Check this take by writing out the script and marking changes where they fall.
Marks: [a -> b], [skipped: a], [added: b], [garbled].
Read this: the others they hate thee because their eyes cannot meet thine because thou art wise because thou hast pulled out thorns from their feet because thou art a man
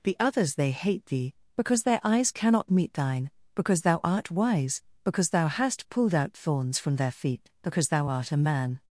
the others they hate thee because their eyes cannot meet thine because thou art wise because thou hast pulled out thorns from their feet because thou art a man